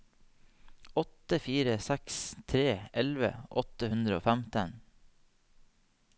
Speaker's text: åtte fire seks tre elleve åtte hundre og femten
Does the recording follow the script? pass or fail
pass